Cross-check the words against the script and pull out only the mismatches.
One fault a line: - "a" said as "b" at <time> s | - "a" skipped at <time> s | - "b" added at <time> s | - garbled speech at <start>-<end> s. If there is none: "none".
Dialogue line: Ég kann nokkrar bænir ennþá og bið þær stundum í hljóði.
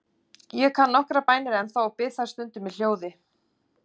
none